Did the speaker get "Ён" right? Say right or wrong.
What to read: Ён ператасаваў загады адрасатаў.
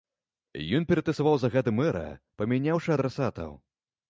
right